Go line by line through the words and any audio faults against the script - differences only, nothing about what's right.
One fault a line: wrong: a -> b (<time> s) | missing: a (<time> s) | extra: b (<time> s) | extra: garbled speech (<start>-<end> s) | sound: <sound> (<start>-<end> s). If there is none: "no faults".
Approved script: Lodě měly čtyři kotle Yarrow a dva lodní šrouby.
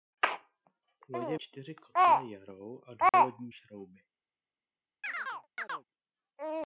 missing: měly (1.4 s)
sound: dropout (3.1-3.1 s)
sound: chirp (5.0-5.9 s)